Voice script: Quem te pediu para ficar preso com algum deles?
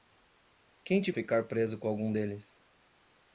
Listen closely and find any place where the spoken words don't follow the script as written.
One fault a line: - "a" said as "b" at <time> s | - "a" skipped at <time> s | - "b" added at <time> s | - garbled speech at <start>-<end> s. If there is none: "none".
- "pediu para" skipped at 1.1 s